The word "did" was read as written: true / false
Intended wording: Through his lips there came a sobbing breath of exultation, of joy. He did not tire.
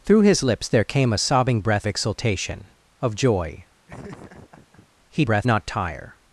false